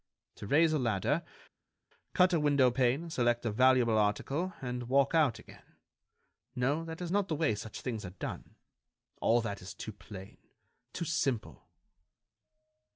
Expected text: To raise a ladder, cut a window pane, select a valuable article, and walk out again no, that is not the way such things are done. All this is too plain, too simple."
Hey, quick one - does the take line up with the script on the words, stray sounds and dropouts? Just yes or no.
no